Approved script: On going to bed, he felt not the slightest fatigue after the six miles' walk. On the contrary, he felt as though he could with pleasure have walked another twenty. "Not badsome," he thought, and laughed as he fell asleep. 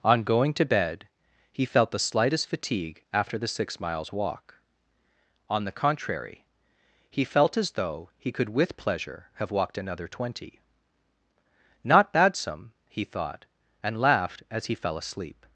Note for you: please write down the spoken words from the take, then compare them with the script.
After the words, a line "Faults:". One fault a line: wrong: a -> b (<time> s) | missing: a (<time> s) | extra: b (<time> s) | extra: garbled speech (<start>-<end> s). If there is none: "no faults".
On going to bed, he felt the slightest fatigue after the six miles' walk. On the contrary, he felt as though he could with pleasure have walked another twenty. "Not badsome," he thought, and laughed as he fell asleep.
Faults:
missing: not (1.9 s)